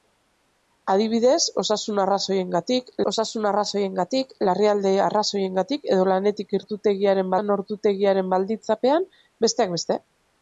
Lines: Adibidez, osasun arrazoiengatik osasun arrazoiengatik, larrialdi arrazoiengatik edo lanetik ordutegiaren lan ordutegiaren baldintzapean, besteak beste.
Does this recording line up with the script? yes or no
yes